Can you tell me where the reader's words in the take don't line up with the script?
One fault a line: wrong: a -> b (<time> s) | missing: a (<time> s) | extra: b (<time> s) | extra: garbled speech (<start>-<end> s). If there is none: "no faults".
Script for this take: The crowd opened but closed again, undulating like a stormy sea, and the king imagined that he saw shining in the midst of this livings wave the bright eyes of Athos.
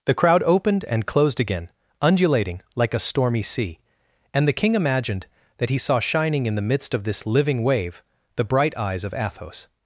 wrong: but -> and (0.8 s)
wrong: livings -> living (7.2 s)